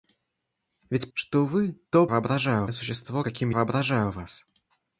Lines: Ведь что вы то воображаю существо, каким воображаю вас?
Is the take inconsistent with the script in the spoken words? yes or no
no